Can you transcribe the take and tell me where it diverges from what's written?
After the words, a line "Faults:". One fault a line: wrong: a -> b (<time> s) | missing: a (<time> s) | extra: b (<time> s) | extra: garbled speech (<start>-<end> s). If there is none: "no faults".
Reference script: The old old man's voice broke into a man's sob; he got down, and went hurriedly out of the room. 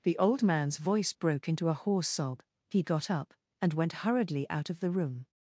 The old man's voice broke into a hoarse sob; he got up, and went hurriedly out of the room.
Faults:
missing: old (0.4 s)
wrong: man's -> hoarse (1.8 s)
wrong: down -> up (3.1 s)